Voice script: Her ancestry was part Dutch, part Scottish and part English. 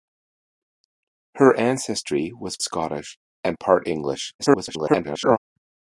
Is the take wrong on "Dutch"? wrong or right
wrong